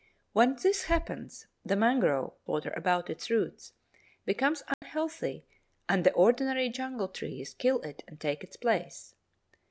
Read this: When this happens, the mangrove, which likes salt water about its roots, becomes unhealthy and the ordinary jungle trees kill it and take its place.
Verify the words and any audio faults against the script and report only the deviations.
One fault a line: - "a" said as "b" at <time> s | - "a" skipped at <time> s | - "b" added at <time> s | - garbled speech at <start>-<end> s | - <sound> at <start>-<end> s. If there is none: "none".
- "which likes salt" skipped at 2.3 s
- dropout at 4.7-4.8 s